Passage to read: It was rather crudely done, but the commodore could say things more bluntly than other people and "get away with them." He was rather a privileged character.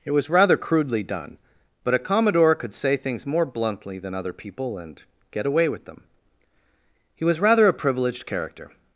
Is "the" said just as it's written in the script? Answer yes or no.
no